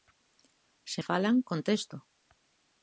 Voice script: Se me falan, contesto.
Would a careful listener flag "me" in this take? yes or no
yes